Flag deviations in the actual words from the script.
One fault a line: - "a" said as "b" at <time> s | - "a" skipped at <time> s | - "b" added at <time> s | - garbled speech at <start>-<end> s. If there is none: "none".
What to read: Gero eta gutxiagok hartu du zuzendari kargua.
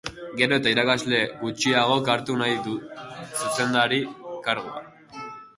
- "irakasle" added at 0.8 s
- "nahi" added at 2.4 s